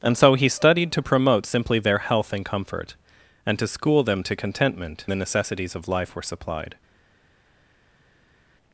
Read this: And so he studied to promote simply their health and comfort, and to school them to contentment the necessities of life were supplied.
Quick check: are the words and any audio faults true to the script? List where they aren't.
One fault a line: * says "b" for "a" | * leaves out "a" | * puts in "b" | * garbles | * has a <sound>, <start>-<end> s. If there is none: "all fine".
all fine